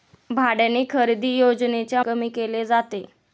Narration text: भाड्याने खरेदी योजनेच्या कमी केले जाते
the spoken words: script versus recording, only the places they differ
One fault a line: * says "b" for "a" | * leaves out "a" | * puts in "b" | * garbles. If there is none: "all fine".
all fine